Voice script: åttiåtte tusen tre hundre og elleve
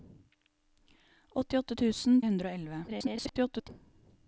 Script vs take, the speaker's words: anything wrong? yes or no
yes